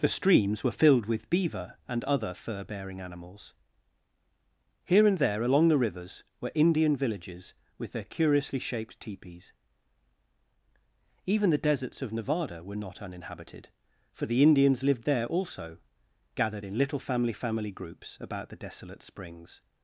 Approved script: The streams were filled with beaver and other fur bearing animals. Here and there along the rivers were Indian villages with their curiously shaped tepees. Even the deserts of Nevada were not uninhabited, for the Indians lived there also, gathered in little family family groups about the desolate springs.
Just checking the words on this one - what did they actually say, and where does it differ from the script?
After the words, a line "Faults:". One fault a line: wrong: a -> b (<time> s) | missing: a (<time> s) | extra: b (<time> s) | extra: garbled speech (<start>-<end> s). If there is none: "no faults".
The streams were filled with beaver and other fur bearing animals. Here and there along the rivers were Indian villages with their curiously shaped tepees. Even the deserts of Nevada were not uninhabited, for the Indians lived there also, gathered in little family family groups about the desolate springs.
Faults:
no faults